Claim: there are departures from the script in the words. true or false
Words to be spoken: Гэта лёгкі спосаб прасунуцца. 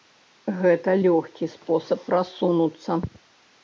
false